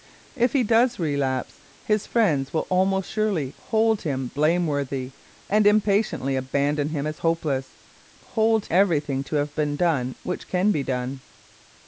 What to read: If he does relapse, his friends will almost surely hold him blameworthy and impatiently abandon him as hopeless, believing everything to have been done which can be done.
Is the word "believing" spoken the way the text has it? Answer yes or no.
no